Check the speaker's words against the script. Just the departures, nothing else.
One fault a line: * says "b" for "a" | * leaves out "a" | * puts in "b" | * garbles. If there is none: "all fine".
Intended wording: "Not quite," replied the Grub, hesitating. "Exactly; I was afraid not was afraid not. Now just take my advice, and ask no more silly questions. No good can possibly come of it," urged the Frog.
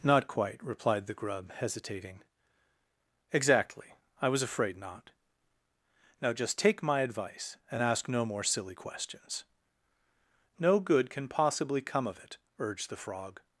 * leaves out "was afraid not"